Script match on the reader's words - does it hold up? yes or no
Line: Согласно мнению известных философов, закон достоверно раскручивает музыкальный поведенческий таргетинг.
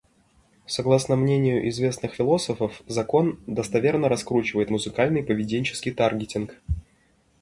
yes